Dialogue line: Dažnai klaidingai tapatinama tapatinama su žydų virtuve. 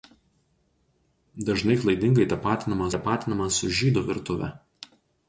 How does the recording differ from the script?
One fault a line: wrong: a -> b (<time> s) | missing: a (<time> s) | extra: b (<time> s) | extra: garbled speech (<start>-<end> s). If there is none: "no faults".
no faults